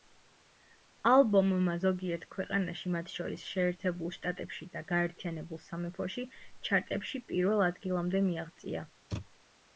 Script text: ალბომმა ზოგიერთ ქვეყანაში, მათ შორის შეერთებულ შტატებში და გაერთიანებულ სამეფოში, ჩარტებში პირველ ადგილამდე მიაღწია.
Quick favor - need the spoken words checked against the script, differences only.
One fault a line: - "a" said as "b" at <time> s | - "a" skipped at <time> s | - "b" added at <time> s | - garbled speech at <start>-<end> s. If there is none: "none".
none